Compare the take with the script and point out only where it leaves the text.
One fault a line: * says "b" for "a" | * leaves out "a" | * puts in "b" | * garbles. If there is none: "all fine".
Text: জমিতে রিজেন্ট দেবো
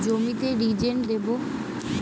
all fine